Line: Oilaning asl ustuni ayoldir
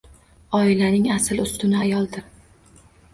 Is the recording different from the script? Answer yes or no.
no